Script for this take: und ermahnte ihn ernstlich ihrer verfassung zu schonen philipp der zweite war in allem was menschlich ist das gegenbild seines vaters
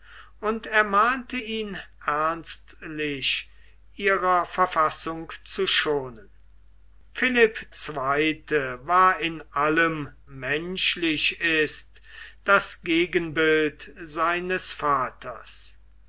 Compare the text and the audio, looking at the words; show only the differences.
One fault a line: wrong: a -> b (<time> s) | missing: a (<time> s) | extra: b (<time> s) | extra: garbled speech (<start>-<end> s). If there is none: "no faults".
missing: der (7.7 s)
missing: was (10.1 s)